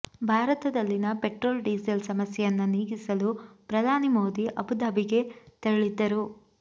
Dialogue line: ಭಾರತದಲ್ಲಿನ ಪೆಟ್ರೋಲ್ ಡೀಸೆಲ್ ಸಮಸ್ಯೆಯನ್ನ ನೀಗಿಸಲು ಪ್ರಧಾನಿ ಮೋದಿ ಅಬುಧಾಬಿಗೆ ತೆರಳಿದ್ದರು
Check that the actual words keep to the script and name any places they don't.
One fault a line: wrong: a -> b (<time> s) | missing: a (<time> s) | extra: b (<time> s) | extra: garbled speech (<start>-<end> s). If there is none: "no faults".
no faults